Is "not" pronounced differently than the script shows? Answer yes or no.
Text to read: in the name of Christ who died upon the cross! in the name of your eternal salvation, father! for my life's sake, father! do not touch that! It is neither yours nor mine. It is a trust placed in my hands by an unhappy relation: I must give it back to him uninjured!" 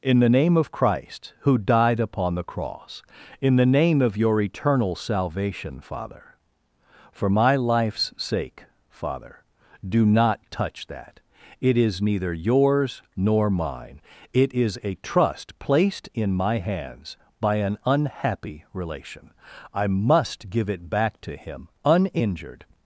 no